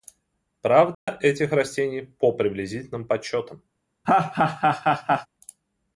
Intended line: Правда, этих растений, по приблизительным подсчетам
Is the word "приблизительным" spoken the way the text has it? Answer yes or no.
yes